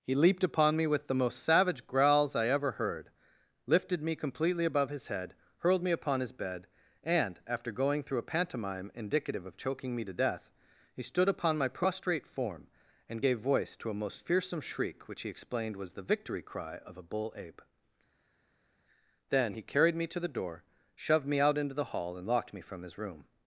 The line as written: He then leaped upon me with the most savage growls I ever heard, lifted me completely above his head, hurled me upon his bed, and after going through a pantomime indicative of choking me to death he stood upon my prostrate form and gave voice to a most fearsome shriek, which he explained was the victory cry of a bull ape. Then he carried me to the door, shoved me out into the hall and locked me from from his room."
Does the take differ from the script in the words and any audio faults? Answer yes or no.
yes